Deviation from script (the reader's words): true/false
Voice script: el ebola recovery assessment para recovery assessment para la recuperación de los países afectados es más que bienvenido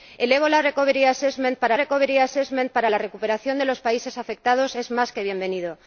false